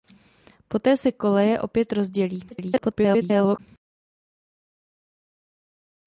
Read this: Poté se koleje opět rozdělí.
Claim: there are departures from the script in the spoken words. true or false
true